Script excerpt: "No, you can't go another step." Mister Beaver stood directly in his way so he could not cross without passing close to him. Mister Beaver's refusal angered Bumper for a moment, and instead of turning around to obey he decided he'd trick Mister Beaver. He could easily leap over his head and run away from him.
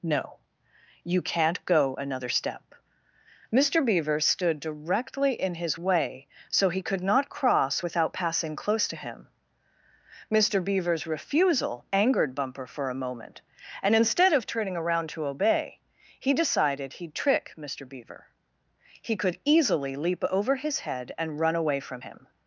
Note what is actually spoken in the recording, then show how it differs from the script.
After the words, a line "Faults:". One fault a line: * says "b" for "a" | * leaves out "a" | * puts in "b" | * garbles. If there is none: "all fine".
"No, you can't go another step." Mister Beaver stood directly in his way so he could not cross without passing close to him. Mister Beaver's refusal angered Bumper for a moment, and instead of turning around to obey he decided he'd trick Mister Beaver. He could easily leap over his head and run away from him.
Faults:
all fine